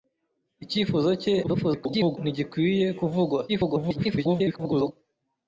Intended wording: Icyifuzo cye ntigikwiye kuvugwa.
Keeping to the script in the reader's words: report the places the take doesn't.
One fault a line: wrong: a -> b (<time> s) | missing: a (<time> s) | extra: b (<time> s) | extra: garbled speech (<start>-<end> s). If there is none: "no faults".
extra: garbled speech (1.4-2.2 s)
extra: garbled speech (3.5-4.9 s)